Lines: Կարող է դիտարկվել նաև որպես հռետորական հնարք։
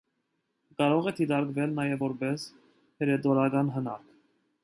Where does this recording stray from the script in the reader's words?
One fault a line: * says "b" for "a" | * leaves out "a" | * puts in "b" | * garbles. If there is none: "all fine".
all fine